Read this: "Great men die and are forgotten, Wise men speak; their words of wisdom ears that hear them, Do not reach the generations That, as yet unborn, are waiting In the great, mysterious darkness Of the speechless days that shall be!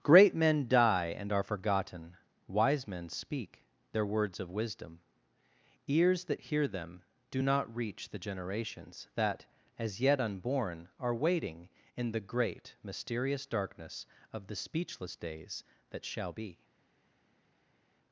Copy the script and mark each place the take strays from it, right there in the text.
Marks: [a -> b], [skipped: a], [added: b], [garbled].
"Great men die and are forgotten, Wise men speak; their words of wisdom ears that hear them, Do not reach the generations That, as yet unborn, are waiting In the great, mysterious darkness Of the speechless days that shall be!